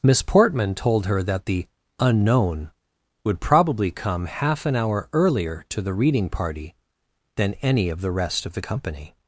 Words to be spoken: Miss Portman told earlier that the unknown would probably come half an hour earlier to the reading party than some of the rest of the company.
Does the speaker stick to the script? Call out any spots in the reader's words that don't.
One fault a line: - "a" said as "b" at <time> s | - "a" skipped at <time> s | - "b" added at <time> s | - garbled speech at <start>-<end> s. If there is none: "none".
- "earlier" said as "her" at 1.1 s
- "some" said as "any" at 7.6 s